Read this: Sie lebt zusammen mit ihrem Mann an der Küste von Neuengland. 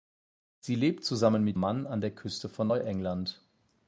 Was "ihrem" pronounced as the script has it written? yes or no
no